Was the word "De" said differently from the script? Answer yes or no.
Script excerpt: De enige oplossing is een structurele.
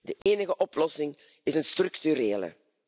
no